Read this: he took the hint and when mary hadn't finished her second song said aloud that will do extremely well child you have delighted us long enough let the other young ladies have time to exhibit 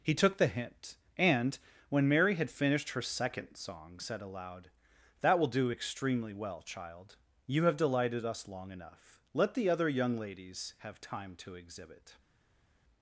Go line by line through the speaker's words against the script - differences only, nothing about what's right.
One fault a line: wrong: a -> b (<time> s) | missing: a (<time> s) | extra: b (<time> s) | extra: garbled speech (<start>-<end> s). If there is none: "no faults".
wrong: hadn't -> had (2.4 s)